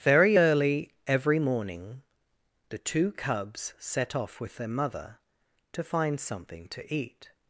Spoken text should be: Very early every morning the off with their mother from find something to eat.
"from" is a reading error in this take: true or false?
true